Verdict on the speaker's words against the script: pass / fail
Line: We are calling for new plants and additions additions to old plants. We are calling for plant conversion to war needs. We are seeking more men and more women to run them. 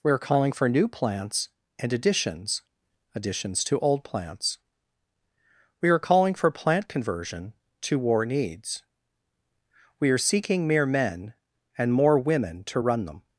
fail